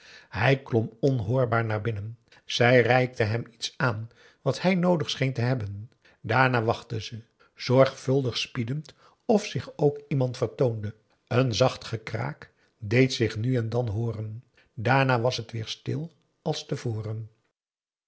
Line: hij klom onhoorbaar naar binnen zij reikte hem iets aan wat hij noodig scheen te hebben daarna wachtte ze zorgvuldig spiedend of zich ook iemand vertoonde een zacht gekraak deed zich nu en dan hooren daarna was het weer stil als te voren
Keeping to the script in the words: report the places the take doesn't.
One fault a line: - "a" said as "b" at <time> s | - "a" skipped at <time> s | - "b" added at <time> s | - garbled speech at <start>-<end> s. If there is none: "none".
none